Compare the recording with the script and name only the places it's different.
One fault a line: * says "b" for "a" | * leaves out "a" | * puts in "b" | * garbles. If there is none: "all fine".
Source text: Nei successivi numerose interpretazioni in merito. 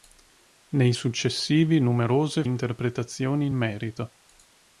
all fine